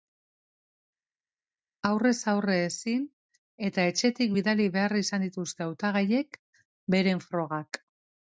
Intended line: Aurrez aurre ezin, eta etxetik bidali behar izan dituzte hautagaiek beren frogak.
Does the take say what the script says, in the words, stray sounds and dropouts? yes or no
yes